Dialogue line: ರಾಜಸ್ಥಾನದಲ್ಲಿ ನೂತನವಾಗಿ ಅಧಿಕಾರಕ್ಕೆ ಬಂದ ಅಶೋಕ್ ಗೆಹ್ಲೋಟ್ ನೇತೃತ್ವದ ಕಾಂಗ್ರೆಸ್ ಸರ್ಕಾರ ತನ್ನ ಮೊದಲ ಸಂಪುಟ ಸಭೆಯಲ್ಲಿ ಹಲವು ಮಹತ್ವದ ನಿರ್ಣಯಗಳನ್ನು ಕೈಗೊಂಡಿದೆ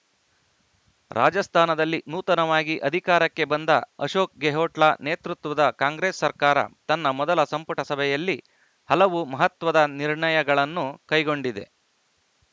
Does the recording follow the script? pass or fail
pass